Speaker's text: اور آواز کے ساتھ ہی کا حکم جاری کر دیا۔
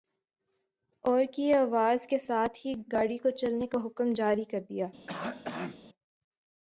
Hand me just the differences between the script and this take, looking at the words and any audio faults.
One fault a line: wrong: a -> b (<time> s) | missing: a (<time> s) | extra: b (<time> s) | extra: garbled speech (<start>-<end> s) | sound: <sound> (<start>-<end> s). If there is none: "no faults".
extra: کی (1.3 s)
extra: گاڑی کو چلنے (2.9 s)
sound: cough (5.1-5.8 s)